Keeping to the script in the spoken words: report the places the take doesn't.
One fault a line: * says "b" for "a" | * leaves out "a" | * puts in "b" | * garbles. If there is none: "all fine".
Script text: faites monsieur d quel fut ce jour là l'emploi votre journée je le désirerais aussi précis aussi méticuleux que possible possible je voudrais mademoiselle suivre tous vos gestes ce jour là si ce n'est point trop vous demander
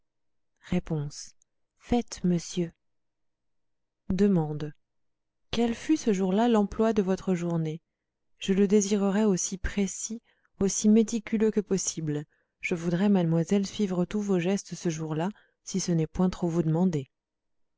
* puts in "de"
* leaves out "possible"